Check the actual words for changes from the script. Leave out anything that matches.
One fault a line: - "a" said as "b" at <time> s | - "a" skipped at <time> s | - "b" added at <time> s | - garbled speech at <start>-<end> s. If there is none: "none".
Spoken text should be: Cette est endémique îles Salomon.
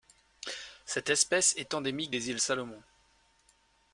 - "espèce" added at 1.1 s
- "des" added at 2.1 s